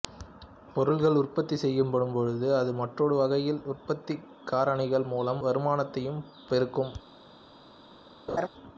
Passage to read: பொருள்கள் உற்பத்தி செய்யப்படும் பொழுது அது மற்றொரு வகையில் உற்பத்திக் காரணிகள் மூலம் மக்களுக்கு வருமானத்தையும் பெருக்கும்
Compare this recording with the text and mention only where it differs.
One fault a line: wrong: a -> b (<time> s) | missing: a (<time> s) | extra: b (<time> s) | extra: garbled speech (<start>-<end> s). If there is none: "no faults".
missing: மக்களுக்கு (5.4 s)